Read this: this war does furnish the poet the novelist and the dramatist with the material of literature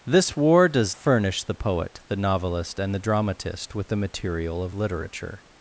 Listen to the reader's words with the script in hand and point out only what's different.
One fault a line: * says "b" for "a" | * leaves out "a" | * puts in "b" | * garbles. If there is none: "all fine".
all fine